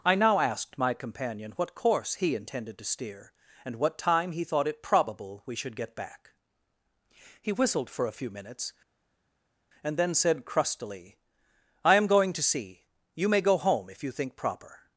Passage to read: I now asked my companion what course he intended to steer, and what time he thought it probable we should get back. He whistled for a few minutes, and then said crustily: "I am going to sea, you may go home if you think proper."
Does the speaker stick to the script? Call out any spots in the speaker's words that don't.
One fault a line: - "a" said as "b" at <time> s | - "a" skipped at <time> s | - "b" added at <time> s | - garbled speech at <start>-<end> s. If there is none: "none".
none